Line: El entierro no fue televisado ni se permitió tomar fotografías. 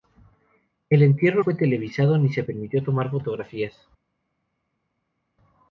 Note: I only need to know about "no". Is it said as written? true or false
false